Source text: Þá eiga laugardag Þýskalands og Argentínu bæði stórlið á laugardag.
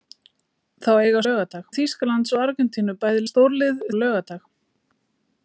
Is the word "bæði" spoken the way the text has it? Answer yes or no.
yes